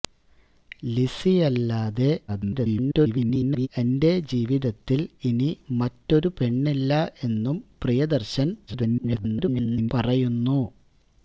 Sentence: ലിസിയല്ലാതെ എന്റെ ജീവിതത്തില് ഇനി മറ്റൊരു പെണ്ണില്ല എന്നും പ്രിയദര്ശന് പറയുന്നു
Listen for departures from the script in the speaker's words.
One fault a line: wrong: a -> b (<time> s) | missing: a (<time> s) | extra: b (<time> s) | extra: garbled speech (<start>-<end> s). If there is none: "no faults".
extra: garbled speech (2.3-3.7 s)
extra: garbled speech (8.7-9.9 s)